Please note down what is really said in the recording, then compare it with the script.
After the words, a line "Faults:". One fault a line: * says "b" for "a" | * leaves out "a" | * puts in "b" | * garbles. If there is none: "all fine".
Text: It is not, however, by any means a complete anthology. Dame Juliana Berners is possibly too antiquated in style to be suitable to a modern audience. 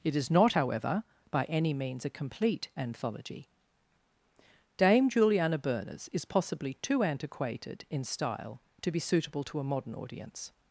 It is not, however, by any means a complete anthology. Dame Juliana Berners is possibly too antiquated in style to be suitable to a modern audience.
Faults:
all fine